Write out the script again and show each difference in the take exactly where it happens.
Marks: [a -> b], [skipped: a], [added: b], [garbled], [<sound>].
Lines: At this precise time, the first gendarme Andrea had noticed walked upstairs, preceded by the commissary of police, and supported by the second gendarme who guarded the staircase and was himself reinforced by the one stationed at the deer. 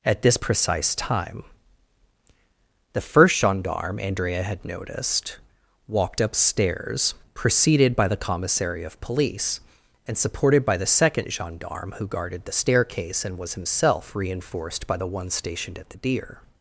At this precise time, the first gendarme Andrea had noticed walked upstairs, preceded by the commissary of police, and supported by the second gendarme who guarded the staircase and was himself reinforced by the one stationed at the deer.